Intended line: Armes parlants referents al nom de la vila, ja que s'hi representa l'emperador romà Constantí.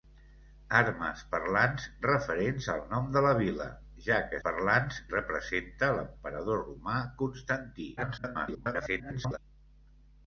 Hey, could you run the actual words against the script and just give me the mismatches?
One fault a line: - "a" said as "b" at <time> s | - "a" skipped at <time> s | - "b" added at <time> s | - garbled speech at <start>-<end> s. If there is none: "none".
- "s'hi" said as "parlants" at 4.5 s
- garbled speech at 8.0-9.4 s